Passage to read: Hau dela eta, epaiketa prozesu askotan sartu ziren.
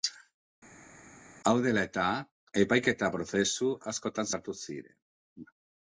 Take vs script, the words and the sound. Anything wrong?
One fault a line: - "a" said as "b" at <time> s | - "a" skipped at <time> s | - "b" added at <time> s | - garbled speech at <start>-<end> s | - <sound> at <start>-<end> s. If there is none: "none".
none